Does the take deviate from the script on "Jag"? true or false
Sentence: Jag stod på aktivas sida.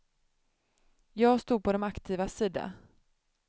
false